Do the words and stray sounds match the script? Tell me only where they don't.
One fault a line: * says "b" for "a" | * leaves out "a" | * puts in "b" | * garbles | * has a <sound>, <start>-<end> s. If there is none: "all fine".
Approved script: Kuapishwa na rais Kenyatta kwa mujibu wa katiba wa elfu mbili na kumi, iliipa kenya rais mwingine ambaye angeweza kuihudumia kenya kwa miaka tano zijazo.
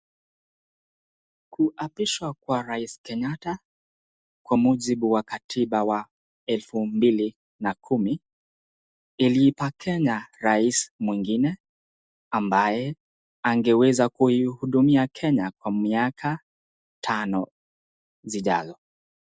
* says "kwa" for "na"